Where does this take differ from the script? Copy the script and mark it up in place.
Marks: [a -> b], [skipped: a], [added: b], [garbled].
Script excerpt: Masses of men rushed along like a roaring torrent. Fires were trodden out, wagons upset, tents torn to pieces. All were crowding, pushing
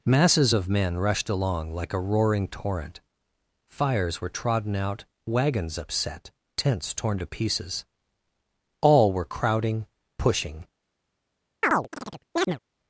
Masses of men rushed along like a roaring torrent. Fires were trodden out, wagons upset, tents torn to pieces. All were crowding, pushing